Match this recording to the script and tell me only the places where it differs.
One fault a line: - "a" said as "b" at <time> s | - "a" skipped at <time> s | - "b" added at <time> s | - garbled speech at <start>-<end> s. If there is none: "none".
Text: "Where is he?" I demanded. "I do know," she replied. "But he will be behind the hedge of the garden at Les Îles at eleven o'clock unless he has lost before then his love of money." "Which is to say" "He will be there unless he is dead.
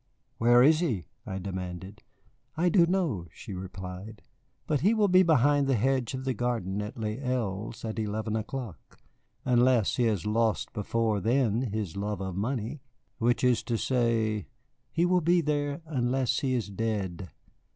none